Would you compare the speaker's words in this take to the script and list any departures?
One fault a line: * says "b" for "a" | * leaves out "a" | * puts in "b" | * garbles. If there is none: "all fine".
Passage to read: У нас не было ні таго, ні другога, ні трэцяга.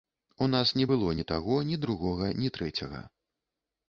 all fine